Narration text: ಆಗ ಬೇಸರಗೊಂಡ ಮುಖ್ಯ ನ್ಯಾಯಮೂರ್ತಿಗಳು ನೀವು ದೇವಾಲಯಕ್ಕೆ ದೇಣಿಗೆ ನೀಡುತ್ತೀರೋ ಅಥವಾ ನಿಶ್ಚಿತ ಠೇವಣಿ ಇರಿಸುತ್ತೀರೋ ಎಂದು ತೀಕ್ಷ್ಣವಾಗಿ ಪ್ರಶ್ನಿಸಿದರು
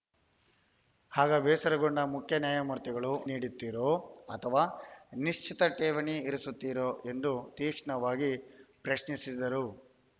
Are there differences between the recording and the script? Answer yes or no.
yes